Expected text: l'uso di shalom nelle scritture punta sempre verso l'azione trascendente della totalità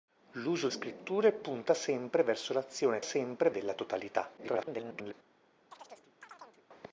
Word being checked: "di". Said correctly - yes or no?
no